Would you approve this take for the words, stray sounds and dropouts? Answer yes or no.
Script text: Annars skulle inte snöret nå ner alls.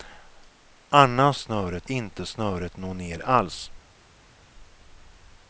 no